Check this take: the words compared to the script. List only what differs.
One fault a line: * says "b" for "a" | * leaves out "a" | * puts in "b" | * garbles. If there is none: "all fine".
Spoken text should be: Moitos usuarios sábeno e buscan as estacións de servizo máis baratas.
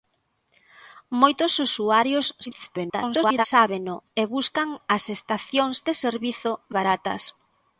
* garbles
* leaves out "máis"